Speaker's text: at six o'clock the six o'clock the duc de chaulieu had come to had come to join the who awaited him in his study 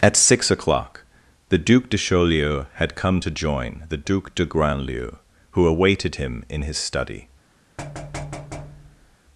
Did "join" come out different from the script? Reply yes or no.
yes